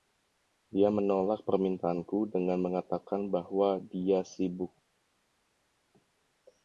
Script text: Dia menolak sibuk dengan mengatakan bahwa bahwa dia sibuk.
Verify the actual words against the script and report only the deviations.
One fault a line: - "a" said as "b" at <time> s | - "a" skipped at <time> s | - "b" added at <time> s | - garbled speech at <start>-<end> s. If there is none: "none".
- "sibuk" said as "permintaanku" at 1.4 s
- "bahwa" skipped at 3.8 s